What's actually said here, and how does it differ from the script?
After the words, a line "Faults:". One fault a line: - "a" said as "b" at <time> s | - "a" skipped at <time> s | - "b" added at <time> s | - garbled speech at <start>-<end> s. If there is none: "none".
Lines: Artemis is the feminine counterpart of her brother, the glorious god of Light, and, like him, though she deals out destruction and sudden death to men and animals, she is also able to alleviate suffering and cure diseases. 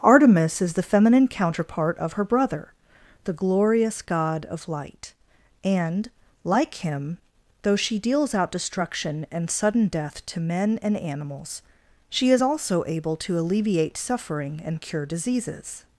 Artemis is the feminine counterpart of her brother, the glorious god of Light, and, like him, though she deals out destruction and sudden death to men and animals, she is also able to alleviate suffering and cure diseases.
Faults:
none